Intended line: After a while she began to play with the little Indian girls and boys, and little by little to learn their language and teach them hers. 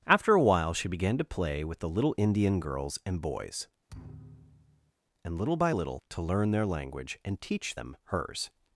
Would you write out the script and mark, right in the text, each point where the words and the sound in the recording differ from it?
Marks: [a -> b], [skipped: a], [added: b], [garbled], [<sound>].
After a while she began to play with the little Indian girls and boys, [thud] and little by little to learn their language and teach them hers.